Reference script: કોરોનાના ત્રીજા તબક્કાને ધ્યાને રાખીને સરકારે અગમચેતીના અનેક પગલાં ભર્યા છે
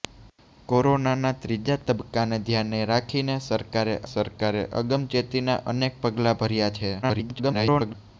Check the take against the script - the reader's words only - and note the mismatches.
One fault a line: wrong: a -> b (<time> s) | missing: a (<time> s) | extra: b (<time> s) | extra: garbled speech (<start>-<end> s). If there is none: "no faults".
extra: સરકારે (4.1 s)
extra: garbled speech (7.0-7.9 s)